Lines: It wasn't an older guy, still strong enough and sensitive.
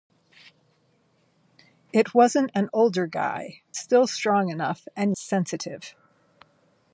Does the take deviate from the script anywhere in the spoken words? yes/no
no